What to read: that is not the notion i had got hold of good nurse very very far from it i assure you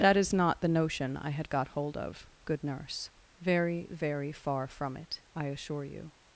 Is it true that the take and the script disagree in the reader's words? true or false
false